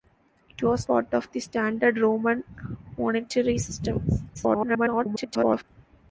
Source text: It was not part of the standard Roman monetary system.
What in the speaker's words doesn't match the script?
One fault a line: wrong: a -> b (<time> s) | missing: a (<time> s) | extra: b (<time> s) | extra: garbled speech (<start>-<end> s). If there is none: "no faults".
missing: not (0.9 s)
extra: garbled speech (4.3-5.6 s)